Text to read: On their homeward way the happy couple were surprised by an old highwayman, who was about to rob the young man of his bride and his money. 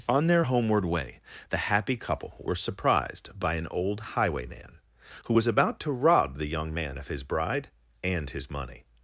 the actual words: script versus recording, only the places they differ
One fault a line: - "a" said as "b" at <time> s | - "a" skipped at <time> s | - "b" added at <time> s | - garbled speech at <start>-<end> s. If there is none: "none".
none